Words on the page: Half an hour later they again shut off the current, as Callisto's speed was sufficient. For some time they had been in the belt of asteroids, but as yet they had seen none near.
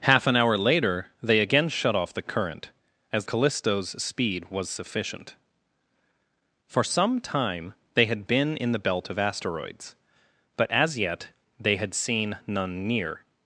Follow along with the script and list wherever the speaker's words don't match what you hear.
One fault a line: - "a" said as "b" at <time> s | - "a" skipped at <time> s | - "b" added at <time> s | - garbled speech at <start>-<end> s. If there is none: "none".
none